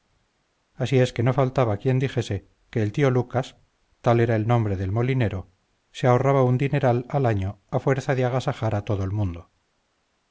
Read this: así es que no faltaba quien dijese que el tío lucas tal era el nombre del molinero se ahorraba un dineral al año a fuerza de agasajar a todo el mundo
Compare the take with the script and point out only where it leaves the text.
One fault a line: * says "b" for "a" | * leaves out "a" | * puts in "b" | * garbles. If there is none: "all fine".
all fine